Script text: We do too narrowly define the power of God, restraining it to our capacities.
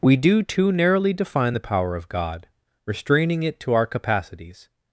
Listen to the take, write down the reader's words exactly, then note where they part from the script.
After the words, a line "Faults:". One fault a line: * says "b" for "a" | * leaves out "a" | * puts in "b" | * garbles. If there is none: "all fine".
We do too narrowly define the power of God, restraining it to our capacities.
Faults:
all fine